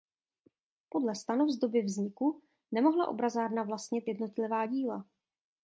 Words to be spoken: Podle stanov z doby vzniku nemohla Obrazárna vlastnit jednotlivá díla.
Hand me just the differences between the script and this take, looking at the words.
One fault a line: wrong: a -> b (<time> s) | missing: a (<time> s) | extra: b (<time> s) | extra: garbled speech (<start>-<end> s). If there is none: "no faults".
no faults